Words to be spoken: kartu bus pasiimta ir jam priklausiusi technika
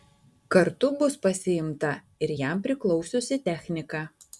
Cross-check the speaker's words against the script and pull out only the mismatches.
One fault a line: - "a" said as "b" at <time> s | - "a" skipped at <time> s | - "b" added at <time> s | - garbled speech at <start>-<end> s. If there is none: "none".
none